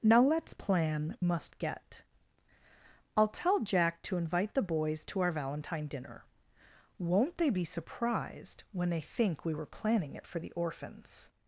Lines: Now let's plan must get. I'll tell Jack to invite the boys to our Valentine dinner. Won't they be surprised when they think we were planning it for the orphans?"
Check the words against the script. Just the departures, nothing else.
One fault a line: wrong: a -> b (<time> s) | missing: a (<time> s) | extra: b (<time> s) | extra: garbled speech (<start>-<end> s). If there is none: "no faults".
no faults